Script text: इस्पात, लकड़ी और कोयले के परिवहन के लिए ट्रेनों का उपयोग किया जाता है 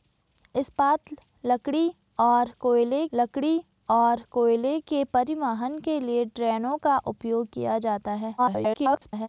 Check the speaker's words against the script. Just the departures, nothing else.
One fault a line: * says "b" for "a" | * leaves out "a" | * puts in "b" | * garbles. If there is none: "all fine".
* puts in "लकड़ी और कोयले"
* garbles